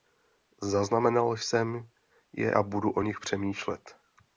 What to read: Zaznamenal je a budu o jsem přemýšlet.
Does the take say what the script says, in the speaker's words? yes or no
no